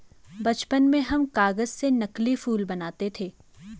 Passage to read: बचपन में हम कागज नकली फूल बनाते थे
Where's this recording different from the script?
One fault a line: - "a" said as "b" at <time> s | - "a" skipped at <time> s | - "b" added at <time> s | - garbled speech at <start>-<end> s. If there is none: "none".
- "से" added at 1.7 s